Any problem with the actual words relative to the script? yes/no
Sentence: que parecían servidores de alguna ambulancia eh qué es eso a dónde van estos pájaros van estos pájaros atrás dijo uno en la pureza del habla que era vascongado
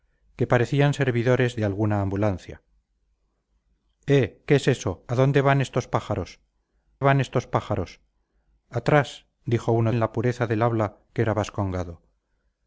no